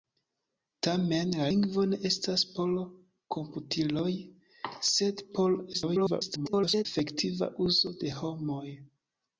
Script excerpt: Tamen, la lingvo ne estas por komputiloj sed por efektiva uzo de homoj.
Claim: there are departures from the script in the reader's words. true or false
true